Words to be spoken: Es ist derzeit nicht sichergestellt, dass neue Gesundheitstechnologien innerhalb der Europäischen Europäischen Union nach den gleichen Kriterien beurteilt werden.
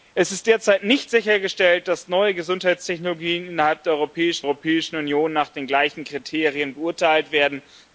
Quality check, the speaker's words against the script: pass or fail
pass